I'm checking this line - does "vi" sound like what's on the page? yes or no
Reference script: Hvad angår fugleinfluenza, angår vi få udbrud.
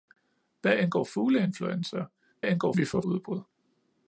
yes